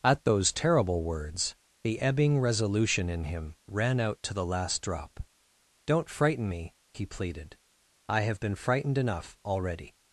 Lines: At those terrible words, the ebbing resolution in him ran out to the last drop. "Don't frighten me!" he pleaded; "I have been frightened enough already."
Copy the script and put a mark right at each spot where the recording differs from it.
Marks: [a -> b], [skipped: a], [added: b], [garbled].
At those terrible words, the ebbing resolution in him ran out to the last drop. "Don't frighten me!" he pleaded; "I have been frightened enough already."